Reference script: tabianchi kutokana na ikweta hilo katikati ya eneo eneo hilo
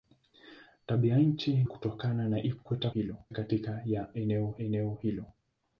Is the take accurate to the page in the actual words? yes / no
yes